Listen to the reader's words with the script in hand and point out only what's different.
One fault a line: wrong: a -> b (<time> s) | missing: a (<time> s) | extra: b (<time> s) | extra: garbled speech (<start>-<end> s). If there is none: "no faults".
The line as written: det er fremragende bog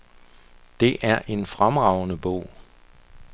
extra: en (1.3 s)